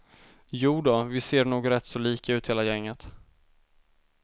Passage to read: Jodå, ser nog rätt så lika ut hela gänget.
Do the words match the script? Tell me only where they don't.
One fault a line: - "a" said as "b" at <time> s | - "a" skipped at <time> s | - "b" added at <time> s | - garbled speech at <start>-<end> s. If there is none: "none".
- "vi" added at 1.0 s